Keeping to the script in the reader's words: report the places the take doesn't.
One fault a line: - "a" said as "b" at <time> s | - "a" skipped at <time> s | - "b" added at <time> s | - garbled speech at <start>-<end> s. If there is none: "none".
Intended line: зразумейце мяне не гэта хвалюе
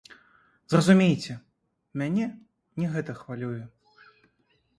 none